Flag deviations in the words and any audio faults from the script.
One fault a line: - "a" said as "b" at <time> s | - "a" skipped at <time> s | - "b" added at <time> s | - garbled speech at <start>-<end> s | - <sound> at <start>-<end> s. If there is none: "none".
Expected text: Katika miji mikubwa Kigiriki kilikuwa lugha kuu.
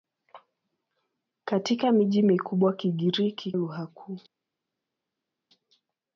- "kilikuwa" skipped at 3.5 s